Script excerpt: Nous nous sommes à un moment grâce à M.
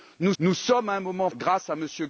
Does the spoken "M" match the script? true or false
true